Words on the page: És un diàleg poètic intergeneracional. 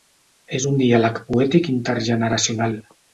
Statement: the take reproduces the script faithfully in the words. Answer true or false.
true